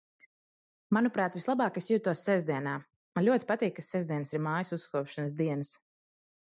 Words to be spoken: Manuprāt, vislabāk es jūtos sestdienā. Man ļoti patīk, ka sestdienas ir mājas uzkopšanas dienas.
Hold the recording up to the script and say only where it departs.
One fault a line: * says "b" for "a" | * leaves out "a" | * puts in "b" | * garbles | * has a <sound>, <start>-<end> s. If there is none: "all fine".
all fine